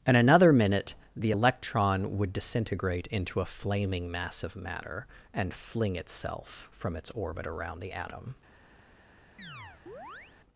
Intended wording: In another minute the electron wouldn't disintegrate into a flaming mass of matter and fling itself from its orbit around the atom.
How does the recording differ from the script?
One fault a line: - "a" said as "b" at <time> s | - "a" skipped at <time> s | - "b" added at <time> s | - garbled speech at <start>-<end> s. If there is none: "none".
- "wouldn't" said as "would" at 2.2 s